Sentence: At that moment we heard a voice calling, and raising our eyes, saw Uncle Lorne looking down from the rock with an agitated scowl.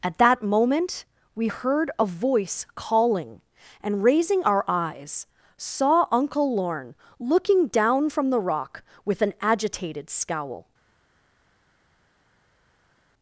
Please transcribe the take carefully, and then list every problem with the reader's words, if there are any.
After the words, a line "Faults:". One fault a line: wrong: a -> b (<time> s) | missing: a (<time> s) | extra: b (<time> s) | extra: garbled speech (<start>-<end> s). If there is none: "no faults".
At that moment we heard a voice calling, and raising our eyes, saw Uncle Lorne looking down from the rock with an agitated scowl.
Faults:
no faults